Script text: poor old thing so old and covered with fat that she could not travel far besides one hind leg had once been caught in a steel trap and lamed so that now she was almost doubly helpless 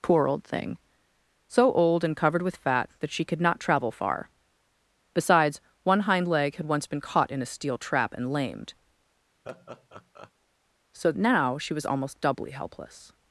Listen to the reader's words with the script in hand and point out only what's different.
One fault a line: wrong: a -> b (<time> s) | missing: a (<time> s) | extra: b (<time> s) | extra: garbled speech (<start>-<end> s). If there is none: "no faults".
missing: that (11.1 s)